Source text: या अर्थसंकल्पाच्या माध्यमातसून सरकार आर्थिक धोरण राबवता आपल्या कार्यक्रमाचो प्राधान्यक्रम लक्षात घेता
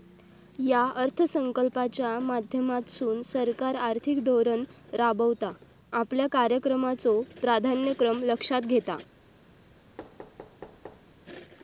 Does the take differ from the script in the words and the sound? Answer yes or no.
yes